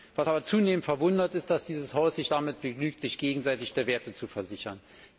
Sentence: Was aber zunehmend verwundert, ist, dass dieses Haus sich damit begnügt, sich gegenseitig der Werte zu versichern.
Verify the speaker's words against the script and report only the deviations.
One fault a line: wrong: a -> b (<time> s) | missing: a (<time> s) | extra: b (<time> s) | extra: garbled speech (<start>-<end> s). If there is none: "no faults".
no faults